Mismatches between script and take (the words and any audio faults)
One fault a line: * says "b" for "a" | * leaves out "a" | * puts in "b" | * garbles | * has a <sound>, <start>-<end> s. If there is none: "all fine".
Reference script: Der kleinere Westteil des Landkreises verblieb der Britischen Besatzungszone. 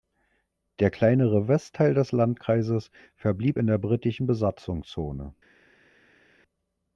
* puts in "in"